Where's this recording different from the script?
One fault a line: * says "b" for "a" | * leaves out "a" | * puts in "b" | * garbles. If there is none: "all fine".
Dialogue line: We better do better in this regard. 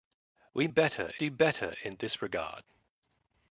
all fine